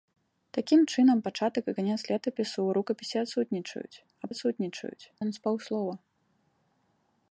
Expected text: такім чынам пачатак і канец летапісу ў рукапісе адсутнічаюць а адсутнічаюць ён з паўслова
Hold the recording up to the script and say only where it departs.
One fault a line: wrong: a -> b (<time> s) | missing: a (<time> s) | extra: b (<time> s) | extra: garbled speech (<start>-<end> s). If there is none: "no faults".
no faults